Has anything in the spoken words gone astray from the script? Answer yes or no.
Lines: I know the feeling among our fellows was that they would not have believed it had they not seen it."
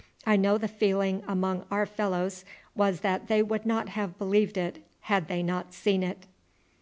no